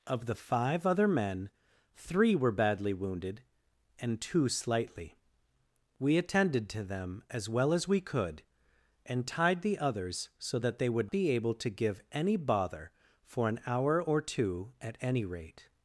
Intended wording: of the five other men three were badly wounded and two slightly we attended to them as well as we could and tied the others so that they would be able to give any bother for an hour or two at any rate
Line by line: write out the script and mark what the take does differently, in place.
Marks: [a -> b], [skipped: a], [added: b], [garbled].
of the five other men three were badly wounded and two slightly we attended to them as well as we could and tied the others so that they would be able to give any bother for an hour or two at any rate